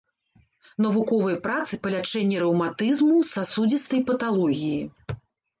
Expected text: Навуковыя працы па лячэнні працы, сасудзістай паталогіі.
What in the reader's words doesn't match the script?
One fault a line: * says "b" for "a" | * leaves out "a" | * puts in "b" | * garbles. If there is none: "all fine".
* says "рэўматызму" for "працы"